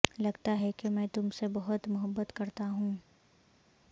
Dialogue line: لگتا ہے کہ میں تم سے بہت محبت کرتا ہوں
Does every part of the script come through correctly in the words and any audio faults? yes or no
yes